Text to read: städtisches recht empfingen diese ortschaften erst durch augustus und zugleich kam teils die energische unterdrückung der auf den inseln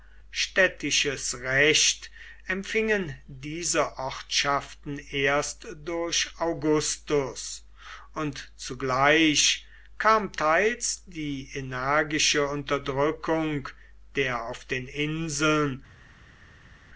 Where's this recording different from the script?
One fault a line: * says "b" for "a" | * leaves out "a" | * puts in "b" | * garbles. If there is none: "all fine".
all fine